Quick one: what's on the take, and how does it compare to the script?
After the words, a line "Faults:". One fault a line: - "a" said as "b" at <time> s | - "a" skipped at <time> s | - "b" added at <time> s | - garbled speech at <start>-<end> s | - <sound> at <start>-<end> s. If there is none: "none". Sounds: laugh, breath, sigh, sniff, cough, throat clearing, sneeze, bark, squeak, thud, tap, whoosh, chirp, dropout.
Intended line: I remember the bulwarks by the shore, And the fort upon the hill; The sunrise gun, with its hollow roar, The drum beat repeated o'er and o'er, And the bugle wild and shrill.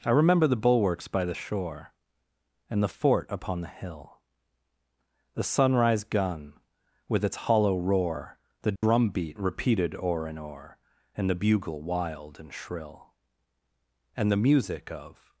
I remember the bulwarks by the shore, And the fort upon the hill; The sunrise gun, with its hollow roar, The drum beat repeated o'er and o'er, And the bugle wild and shrill. And the music of
Faults:
- dropout at 8.8-8.8 s
- "And the music of" added at 14.2 s